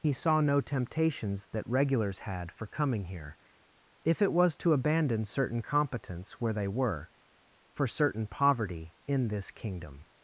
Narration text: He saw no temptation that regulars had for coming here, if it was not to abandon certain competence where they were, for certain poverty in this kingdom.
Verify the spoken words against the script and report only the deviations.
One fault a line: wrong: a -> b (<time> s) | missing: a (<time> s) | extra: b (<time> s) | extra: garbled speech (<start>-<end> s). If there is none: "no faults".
wrong: temptation -> temptations (0.6 s)
missing: not (4.5 s)